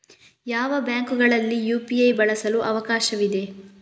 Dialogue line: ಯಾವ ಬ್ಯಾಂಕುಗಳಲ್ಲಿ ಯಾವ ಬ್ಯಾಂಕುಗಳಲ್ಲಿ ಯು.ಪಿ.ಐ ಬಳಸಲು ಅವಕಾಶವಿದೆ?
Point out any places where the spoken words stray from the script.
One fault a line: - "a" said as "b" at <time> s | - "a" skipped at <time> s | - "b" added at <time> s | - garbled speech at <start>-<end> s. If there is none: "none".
- "ಯಾವ ಬ್ಯಾಂಕುಗಳಲ್ಲಿ" skipped at 1.6 s